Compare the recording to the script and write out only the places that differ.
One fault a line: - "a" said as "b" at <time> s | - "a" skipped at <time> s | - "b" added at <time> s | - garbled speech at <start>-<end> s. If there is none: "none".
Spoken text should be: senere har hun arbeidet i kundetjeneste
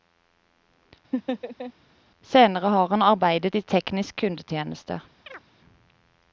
- "hun" said as "han" at 2.9 s
- "teknisk" added at 3.6 s